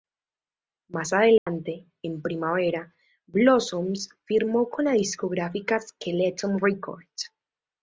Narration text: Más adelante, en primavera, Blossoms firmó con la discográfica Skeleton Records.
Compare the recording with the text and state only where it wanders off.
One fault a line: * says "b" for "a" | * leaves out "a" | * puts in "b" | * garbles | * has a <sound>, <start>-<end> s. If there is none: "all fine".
* has a dropout, 1.4-1.5 s